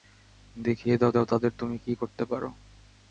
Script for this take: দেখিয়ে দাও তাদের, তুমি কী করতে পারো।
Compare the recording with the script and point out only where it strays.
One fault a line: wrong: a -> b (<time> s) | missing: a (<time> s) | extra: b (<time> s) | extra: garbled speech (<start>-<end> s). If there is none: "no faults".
extra: দাও (1.1 s)